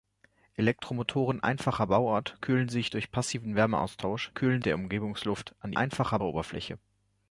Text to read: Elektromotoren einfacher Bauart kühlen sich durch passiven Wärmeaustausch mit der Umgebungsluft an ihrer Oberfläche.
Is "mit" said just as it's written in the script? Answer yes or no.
no